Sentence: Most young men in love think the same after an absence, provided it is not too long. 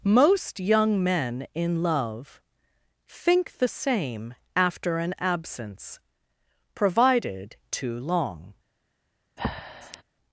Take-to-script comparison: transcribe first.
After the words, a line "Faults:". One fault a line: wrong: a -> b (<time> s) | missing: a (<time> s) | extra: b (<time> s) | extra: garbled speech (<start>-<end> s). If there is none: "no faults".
Most young men in love think the same after an absence, provided too long.
Faults:
missing: it is not (7.5 s)